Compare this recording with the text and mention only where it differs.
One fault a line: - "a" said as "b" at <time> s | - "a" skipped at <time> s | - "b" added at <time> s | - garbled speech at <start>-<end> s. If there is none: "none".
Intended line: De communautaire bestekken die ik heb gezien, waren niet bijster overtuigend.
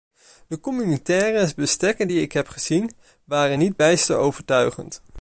none